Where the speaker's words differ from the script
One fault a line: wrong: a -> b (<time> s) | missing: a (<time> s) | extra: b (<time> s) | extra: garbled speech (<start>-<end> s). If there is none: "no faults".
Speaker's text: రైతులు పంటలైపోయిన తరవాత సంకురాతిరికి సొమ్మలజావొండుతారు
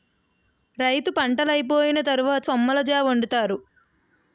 missing: సంకురాతిరికి (2.5 s)